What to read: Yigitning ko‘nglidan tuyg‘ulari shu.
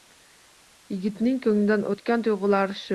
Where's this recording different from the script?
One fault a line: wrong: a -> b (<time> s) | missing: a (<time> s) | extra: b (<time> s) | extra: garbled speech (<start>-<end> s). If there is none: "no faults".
extra: o‘tgan (1.9 s)